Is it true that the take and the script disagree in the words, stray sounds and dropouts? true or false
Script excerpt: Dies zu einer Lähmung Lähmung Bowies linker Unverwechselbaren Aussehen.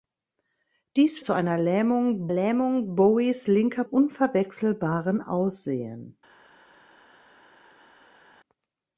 false